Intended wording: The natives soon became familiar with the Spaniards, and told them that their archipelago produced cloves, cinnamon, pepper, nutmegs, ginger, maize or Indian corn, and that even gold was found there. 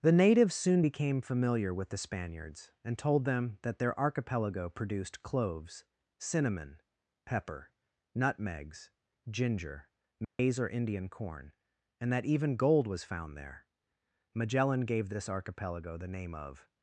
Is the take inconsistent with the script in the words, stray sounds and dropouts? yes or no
yes